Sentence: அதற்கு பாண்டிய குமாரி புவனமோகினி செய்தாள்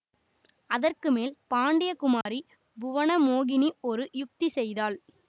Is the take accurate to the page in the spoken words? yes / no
no